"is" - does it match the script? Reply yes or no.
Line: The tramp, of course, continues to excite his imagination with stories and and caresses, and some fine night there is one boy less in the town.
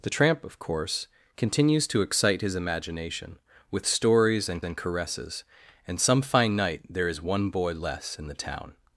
yes